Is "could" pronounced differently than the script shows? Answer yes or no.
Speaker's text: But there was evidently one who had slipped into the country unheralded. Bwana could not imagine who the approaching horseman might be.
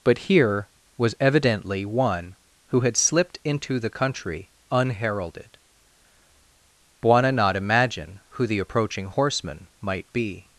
yes